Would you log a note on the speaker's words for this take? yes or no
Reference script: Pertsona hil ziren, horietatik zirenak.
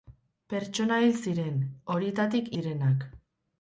no